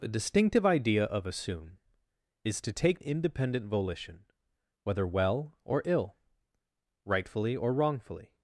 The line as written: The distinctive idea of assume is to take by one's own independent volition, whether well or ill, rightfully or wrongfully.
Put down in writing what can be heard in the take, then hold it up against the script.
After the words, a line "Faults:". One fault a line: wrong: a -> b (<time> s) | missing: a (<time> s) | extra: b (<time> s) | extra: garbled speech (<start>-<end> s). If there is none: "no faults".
The distinctive idea of assume is to take independent volition, whether well or ill, rightfully or wrongfully.
Faults:
missing: by one's own (3.0 s)